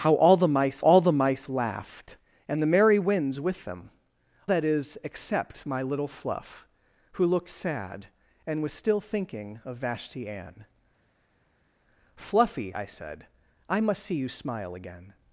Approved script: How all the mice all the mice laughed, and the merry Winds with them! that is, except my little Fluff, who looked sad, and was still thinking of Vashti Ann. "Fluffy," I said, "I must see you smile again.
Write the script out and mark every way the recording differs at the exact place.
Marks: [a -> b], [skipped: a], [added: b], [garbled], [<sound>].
How all the mice all the mice laughed, and the merry Winds with them! that is, except my little Fluff, who looked sad, and was still thinking of Vashti Ann. "Fluffy," I said, "I must see you smile again.